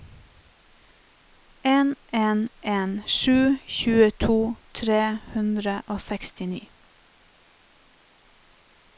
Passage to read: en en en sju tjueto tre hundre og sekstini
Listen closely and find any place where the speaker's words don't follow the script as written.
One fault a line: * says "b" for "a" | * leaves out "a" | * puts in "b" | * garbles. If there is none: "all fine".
all fine